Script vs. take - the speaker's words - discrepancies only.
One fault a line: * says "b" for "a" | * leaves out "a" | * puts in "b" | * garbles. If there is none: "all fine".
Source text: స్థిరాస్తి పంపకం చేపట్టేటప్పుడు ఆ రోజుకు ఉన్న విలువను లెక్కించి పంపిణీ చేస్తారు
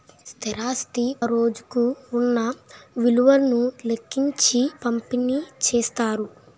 * leaves out "పంపకం చేపట్టేటప్పుడు ఆ"